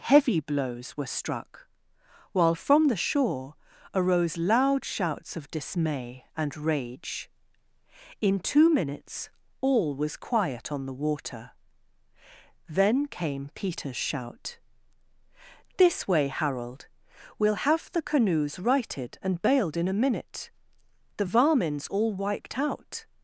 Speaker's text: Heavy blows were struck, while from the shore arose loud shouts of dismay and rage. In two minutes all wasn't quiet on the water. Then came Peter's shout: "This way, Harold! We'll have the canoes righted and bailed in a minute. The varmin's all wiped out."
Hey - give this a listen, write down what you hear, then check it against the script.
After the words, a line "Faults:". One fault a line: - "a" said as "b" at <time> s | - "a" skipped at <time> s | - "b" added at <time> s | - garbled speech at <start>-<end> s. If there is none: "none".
Heavy blows were struck, while from the shore arose loud shouts of dismay and rage. In two minutes all was quiet on the water. Then came Peter's shout: "This way, Harold! We'll have the canoes righted and bailed in a minute. The varmin's all wiped out."
Faults:
- "wasn't" said as "was" at 10.0 s